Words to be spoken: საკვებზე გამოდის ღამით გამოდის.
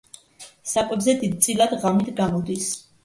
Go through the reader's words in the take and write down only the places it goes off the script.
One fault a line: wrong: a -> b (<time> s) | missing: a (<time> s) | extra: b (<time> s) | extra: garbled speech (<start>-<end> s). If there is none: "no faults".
wrong: გამოდის -> დიდწილად (1.2 s)